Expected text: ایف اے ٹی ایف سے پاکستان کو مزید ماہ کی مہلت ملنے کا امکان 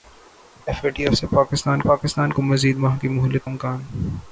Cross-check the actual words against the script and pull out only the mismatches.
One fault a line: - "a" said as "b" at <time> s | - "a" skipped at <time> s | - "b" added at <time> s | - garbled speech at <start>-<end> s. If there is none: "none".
- "پاکستان" added at 1.8 s
- "ملنے کا" skipped at 3.5 s